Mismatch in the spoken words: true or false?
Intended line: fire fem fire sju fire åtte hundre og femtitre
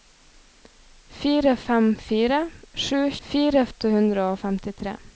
false